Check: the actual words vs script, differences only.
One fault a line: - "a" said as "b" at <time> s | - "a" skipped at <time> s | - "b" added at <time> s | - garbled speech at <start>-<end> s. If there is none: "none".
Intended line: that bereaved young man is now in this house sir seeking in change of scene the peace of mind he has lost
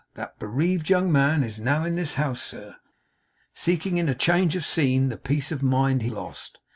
- "has" skipped at 6.1 s